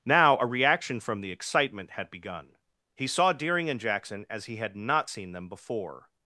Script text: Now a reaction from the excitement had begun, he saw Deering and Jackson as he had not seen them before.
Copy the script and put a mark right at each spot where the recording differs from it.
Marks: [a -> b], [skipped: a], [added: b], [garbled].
Now a reaction from the excitement had begun, he saw Deering and Jackson as he had not seen them before.